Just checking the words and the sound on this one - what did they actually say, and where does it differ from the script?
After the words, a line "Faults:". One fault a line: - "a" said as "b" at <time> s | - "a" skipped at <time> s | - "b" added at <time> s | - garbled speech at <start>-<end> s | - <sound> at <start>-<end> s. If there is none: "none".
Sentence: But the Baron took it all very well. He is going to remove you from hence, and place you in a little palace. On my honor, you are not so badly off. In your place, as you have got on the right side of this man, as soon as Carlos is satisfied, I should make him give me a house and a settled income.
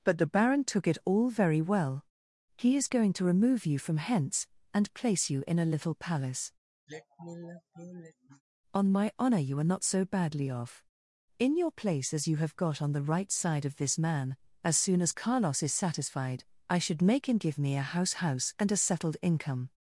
But the Baron took it all very well. He is going to remove you from hence, and place you in a little palace. On my honor, you are not so badly off. In your place, as you have got on the right side of this man, as soon as Carlos is satisfied, I should make him give me a house house and a settled income.
Faults:
- sigh at 6.9-8.4 s
- "house" added at 18.1 s